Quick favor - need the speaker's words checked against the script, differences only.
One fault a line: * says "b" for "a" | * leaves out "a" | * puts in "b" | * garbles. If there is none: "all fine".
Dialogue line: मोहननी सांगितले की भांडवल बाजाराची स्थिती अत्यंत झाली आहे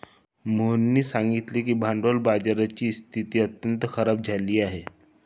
* puts in "खराब"